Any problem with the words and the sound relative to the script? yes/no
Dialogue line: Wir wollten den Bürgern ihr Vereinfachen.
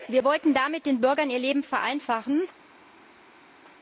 yes